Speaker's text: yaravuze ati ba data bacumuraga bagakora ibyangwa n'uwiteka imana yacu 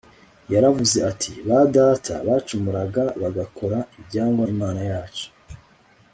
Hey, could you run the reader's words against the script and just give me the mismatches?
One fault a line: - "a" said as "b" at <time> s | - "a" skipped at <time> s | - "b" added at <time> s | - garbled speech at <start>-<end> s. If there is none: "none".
- "n'uwiteka" skipped at 4.4 s